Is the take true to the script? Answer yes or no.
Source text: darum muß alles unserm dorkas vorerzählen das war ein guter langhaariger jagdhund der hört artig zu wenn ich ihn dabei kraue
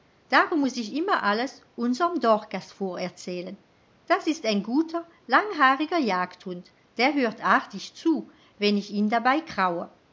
no